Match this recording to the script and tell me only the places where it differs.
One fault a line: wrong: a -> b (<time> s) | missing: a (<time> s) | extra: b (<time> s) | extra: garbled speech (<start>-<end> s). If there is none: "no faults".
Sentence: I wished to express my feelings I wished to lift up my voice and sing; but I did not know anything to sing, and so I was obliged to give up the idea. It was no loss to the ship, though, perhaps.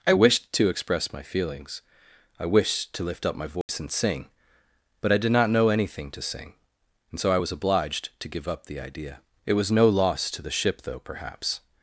no faults